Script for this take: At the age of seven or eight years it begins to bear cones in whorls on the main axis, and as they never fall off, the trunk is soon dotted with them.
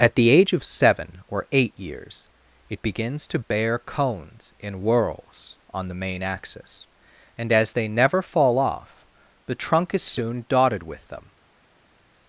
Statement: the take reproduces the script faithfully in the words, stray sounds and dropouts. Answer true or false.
true